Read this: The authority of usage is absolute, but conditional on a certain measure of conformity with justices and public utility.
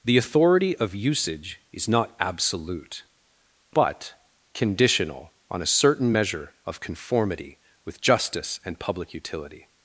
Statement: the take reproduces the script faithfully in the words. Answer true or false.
false